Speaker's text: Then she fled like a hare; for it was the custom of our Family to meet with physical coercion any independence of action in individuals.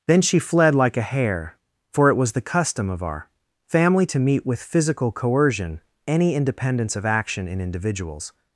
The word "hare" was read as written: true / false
true